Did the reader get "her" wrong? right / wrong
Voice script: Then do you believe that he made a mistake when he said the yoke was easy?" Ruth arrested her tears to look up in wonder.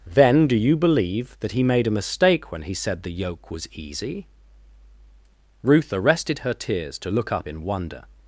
right